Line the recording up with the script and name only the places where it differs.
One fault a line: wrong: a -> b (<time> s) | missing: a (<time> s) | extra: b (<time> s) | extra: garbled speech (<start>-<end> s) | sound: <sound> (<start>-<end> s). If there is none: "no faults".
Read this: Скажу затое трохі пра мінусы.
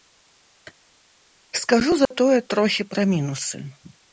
sound: dropout (2.1-2.1 s)